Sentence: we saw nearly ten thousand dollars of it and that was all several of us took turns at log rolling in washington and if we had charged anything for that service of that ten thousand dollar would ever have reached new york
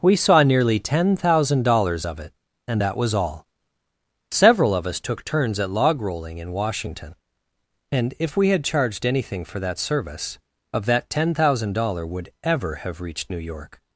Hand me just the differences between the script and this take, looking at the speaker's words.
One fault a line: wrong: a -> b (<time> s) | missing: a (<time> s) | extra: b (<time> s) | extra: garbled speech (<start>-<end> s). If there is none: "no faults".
no faults